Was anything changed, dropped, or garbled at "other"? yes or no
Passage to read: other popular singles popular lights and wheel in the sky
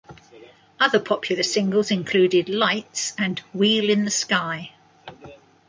no